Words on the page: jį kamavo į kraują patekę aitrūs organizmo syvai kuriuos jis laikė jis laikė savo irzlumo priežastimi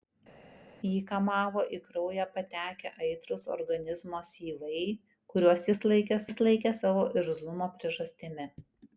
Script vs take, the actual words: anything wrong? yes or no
no